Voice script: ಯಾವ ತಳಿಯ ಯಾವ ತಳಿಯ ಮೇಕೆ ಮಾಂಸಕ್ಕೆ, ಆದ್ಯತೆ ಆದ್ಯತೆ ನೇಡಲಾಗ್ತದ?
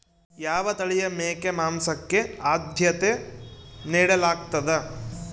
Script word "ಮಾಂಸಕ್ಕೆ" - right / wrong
right